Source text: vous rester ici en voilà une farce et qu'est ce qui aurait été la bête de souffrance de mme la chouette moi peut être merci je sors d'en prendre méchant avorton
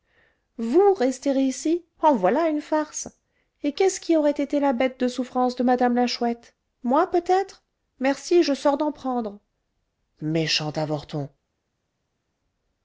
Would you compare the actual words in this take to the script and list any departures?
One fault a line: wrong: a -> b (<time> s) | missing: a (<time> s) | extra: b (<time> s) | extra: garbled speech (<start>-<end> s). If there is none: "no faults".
no faults